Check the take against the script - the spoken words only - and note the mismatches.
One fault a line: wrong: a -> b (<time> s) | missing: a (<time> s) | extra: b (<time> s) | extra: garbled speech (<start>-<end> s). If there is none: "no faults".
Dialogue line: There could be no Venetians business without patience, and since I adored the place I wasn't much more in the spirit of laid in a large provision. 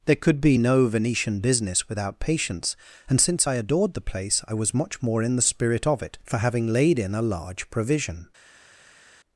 wrong: Venetians -> Venetian (0.9 s)
wrong: wasn't -> was (4.5 s)
extra: it for having (6.0 s)